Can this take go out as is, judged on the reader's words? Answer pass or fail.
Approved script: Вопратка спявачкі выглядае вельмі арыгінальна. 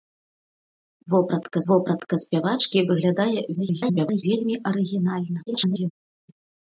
fail